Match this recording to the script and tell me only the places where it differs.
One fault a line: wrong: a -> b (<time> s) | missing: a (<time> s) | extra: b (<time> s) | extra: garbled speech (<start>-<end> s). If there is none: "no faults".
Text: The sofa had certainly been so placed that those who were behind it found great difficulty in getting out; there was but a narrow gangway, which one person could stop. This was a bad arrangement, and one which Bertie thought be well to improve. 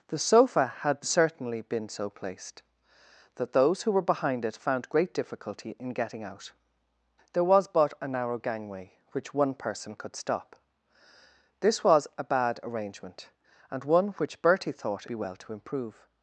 no faults